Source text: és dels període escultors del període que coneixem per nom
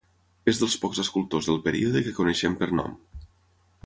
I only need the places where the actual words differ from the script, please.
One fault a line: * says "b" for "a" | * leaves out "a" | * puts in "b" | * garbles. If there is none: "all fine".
* says "pocs" for "període"